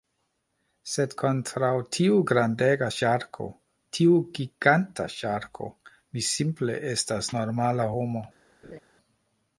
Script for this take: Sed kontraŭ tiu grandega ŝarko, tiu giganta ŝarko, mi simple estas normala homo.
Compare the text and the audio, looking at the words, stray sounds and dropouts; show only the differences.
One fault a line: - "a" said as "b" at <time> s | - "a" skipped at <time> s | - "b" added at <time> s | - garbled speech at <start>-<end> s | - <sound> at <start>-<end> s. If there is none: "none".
- laugh at 8.6-8.8 s